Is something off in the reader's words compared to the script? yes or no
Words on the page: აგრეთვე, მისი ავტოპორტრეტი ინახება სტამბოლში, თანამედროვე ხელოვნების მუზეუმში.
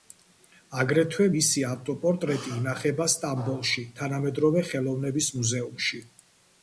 no